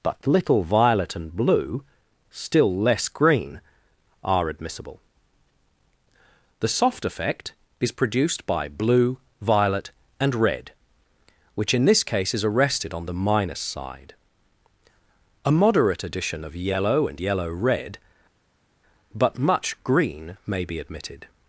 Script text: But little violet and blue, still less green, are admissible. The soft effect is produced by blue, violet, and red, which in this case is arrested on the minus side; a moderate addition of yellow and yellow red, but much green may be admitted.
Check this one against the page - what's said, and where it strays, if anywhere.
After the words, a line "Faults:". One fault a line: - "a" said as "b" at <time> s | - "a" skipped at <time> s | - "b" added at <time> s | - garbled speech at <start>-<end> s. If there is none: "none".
But little violet and blue, still less green, are admissible. The soft effect is produced by blue, violet, and red, which in this case is arrested on the minus side; a moderate addition of yellow and yellow red, but much green may be admitted.
Faults:
none